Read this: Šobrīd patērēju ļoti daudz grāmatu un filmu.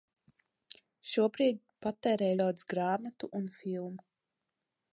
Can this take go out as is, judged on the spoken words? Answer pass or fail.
fail